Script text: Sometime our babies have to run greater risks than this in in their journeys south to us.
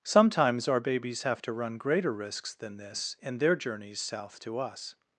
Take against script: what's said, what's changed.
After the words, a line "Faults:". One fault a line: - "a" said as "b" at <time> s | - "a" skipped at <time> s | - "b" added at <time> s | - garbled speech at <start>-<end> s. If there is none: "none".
Sometimes our babies have to run greater risks than this in their journeys south to us.
Faults:
- "Sometime" said as "Sometimes" at 0.0 s
- "in" skipped at 3.4 s